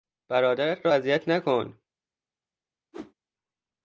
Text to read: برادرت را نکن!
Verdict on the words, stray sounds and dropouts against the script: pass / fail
fail